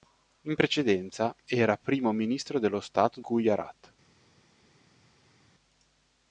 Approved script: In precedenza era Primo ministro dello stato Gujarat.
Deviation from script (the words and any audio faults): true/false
false